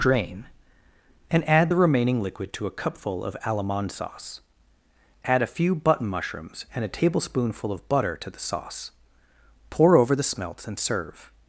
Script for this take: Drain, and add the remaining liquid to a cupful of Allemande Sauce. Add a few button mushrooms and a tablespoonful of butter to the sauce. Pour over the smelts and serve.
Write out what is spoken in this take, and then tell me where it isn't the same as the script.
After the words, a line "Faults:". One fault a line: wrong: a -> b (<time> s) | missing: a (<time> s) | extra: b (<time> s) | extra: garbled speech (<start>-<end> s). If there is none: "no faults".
Drain, and add the remaining liquid to a cupful of Allemande Sauce. Add a few button mushrooms and a tablespoonful of butter to the sauce. Pour over the smelts and serve.
Faults:
no faults